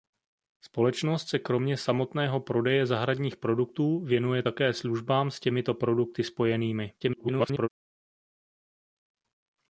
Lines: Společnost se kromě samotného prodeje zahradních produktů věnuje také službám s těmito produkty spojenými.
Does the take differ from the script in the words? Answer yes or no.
yes